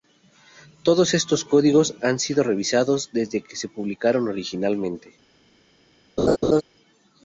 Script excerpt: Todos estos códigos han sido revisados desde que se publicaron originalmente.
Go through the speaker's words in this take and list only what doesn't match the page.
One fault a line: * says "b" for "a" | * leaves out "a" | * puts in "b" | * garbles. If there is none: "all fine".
all fine